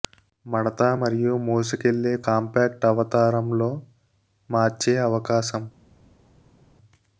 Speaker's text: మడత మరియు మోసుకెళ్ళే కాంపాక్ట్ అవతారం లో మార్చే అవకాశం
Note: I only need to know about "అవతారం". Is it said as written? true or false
true